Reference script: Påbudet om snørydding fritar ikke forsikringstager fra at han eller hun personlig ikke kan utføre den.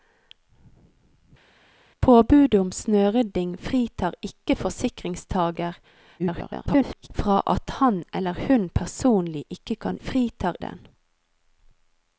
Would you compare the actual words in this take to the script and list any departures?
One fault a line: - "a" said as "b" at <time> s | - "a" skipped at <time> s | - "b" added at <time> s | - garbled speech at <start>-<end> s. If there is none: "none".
- garbled speech at 6.2-7.1 s
- "utføre" said as "fritar" at 10.0 s